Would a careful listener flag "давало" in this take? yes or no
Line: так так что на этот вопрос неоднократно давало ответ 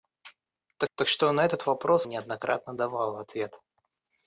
no